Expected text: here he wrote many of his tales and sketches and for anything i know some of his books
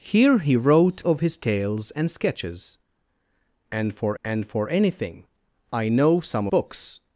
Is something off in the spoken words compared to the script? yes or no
yes